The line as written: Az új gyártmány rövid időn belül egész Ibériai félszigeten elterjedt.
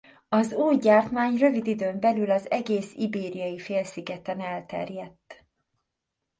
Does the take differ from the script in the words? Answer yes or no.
yes